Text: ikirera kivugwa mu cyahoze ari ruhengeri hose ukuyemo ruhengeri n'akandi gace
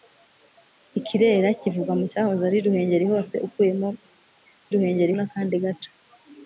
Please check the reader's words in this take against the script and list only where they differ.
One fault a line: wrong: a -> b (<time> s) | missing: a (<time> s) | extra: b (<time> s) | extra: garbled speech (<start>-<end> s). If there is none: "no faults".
no faults